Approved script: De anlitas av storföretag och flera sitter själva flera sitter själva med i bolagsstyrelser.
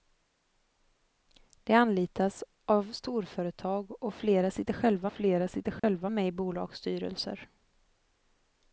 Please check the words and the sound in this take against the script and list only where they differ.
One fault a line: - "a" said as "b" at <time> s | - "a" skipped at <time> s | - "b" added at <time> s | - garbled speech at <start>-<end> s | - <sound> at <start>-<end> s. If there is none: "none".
- dropout at 5.8-5.8 s